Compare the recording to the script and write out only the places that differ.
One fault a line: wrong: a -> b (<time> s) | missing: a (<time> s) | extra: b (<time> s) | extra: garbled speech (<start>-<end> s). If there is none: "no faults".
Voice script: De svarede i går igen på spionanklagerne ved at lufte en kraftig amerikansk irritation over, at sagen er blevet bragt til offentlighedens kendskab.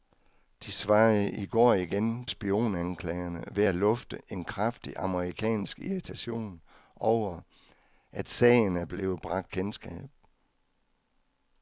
missing: på (2.2 s)
missing: til offentlighedens (9.5 s)